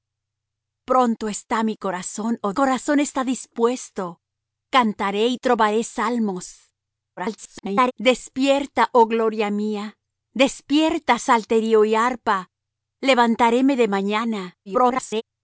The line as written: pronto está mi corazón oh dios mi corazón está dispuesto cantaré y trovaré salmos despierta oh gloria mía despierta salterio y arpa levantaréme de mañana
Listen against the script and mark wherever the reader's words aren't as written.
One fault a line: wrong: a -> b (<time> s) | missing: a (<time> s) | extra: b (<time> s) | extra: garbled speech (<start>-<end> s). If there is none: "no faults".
missing: dios mi (2.5 s)
extra: garbled speech (7.2-7.9 s)
extra: garbled speech (14.7-15.2 s)